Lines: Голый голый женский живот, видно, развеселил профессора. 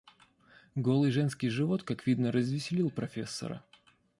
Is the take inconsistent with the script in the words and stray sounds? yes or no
yes